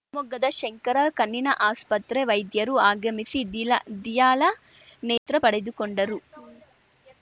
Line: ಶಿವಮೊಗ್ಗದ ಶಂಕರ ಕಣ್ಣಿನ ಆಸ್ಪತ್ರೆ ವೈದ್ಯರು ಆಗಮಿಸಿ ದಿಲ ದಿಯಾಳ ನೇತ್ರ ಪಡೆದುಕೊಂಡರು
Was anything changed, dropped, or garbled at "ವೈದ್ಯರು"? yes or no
no